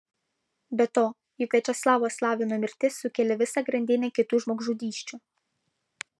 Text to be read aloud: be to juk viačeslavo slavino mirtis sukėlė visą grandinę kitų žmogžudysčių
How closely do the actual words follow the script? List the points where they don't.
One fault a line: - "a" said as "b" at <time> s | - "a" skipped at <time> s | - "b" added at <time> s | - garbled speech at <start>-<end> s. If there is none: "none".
none